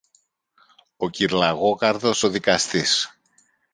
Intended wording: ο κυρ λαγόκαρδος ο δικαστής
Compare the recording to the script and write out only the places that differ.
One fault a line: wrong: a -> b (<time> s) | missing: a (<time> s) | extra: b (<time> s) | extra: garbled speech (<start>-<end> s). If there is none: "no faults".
no faults